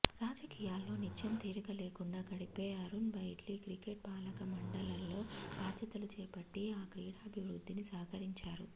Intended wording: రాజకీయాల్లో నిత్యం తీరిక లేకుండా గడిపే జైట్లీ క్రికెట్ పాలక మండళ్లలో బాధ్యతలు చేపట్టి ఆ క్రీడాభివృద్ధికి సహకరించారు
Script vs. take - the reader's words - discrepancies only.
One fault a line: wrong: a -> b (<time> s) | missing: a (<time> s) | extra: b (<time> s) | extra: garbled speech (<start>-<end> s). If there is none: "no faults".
extra: అరుణ్ (2.8 s)